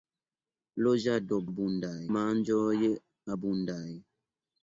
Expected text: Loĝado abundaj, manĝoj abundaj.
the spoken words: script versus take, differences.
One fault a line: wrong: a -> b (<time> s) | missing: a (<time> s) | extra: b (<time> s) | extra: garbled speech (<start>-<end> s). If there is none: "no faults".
no faults